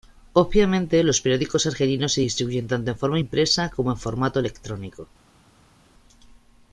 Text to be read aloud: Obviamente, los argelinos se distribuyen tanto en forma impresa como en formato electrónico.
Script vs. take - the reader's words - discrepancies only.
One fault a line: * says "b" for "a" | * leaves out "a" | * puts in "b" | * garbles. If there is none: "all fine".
* puts in "periódicos"